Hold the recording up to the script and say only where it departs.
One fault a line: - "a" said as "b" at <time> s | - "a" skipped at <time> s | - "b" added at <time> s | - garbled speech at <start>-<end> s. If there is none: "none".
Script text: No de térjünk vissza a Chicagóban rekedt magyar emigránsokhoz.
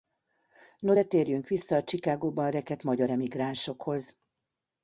none